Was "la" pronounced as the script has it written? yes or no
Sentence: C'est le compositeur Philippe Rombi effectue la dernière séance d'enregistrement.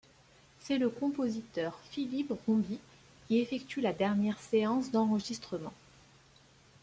yes